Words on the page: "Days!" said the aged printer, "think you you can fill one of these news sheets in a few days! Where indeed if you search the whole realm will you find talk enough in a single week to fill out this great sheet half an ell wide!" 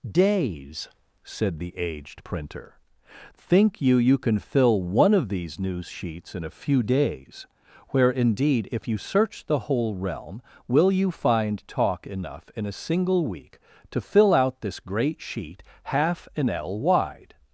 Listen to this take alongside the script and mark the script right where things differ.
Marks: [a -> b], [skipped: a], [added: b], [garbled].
"Days!" said the aged printer, "think you you can fill one of these news sheets in a few days! Where indeed if you search the whole realm will you find talk enough in a single week to fill out this great sheet half an ell wide!"